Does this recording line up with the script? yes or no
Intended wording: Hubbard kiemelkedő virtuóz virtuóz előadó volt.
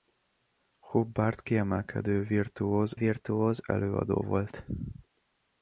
yes